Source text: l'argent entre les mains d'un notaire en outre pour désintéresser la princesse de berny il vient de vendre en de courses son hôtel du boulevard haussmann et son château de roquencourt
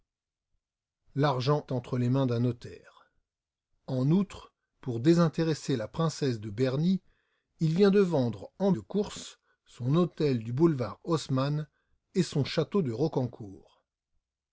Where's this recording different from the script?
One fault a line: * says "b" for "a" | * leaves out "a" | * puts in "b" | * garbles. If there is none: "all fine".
all fine